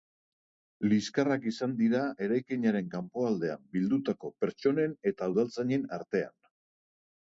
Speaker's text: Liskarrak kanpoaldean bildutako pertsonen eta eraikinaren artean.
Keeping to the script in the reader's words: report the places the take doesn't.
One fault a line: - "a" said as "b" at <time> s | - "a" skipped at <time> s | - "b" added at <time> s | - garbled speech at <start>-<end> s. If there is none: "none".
- "izan dira eraikinaren" added at 1.5 s
- "eraikinaren" said as "udaltzainen" at 5.3 s